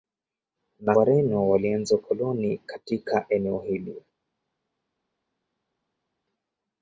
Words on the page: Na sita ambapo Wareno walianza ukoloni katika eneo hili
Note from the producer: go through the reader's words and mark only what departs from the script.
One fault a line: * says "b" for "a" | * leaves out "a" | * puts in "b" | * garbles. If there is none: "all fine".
* leaves out "sita ambapo"